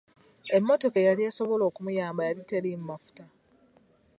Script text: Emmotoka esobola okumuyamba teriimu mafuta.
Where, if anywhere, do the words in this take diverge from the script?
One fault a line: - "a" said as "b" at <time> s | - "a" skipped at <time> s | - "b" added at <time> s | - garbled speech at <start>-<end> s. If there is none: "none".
- "eyali" added at 1.0 s
- "yali" added at 2.3 s